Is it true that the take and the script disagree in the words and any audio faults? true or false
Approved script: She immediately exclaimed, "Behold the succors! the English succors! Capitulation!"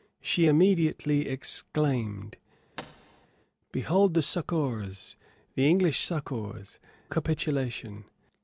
true